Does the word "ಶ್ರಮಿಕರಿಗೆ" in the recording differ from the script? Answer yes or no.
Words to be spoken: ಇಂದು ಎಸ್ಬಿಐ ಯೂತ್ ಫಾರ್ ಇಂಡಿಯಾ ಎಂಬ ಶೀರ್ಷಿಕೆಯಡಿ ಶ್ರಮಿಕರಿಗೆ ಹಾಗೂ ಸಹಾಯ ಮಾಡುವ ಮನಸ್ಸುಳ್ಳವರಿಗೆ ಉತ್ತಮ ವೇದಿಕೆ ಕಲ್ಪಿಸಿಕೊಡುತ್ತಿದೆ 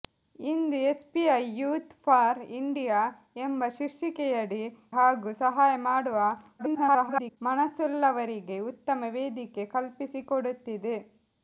yes